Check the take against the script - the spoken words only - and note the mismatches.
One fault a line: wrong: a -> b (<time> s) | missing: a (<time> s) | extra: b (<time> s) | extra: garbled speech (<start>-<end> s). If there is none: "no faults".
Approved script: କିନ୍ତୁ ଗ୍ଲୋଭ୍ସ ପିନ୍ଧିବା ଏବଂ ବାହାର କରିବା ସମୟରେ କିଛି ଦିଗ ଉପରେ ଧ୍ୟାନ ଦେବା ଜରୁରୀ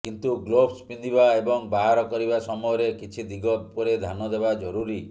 no faults